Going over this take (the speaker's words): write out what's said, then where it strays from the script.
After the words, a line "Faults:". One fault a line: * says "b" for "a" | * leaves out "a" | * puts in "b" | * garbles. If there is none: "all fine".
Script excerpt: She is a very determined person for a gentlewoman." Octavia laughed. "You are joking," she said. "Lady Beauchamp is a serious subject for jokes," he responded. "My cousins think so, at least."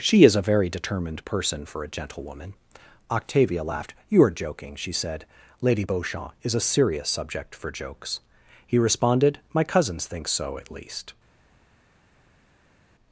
She is a very determined person for a gentlewoman." Octavia laughed. "You are joking," she said. "Lady Beauchamp is a serious subject for jokes," he responded. "My cousins think so, at least."
Faults:
all fine